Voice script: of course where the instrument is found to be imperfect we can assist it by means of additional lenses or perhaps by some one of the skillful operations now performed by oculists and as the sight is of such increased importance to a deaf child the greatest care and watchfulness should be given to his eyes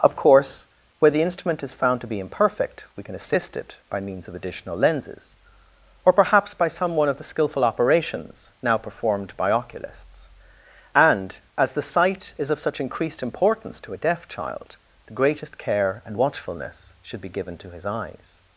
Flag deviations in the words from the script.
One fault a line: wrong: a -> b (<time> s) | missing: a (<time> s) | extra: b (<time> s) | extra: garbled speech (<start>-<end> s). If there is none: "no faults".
no faults